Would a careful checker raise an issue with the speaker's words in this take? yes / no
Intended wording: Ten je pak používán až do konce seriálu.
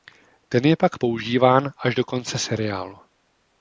no